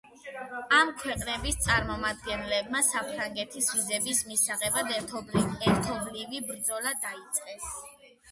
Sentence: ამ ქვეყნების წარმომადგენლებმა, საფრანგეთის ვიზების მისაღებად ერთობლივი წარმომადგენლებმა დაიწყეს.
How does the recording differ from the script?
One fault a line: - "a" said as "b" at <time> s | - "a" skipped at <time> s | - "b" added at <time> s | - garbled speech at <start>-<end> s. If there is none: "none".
- "წარმომადგენლებმა" said as "ბრძოლა" at 6.5 s